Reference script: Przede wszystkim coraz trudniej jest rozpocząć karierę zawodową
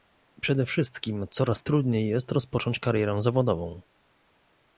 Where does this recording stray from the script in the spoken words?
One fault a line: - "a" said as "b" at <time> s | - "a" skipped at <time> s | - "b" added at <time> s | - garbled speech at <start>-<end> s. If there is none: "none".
none